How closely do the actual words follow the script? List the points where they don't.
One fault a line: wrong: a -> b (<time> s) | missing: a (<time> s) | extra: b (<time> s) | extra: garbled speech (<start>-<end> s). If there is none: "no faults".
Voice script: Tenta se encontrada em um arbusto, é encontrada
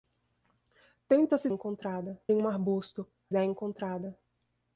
no faults